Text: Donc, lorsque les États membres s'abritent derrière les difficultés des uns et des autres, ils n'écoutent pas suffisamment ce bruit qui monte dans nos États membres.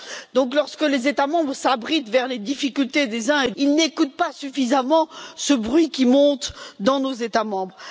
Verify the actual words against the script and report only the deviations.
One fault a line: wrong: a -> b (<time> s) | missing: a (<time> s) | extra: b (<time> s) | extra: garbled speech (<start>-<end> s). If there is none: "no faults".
missing: des autres (3.5 s)